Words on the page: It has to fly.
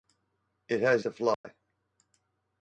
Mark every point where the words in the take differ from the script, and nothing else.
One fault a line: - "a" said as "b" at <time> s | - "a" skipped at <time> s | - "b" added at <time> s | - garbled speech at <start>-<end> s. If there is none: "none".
none